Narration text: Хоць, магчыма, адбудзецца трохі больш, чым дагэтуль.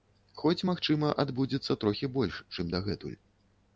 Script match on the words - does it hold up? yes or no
yes